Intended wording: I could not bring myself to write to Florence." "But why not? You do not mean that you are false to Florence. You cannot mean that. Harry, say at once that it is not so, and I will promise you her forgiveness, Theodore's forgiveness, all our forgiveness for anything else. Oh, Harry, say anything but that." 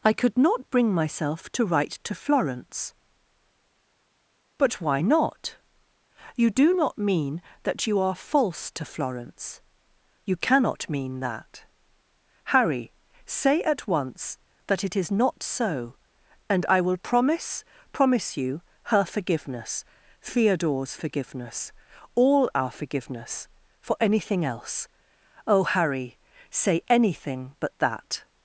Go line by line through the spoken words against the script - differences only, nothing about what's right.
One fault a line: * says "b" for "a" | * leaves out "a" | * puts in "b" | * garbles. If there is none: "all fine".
* puts in "promise"